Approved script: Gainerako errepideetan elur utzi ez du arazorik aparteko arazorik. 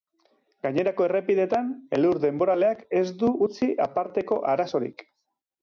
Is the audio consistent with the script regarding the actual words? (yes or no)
no